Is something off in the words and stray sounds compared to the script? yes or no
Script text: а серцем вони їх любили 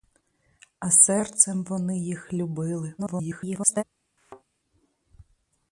yes